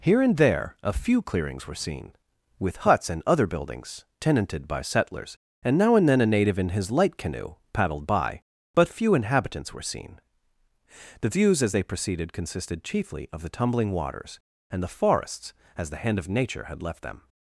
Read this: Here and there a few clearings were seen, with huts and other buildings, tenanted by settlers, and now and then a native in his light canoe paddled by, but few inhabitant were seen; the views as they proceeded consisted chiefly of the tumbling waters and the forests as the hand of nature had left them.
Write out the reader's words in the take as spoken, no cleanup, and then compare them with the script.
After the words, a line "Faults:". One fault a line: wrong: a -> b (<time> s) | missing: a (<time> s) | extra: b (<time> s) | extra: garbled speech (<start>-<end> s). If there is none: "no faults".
Here and there a few clearings were seen, with huts and other buildings, tenanted by settlers, and now and then a native in his light canoe paddled by, but few inhabitants were seen; the views as they proceeded consisted chiefly of the tumbling waters and the forests as the hand of nature had left them.
Faults:
wrong: inhabitant -> inhabitants (9.1 s)